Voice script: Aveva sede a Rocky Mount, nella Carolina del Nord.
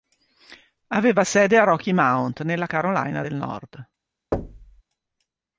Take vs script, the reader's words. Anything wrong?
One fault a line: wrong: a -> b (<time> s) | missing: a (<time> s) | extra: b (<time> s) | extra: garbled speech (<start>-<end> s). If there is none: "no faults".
no faults